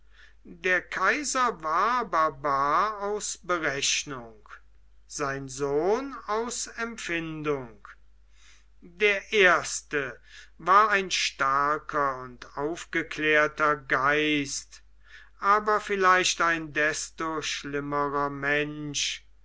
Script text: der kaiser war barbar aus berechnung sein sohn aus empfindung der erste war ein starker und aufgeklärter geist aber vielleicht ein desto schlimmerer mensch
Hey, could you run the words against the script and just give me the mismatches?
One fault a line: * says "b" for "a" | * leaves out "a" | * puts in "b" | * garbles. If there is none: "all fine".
all fine